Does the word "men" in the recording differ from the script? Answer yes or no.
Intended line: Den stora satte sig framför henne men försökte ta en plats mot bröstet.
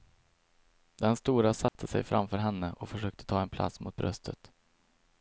yes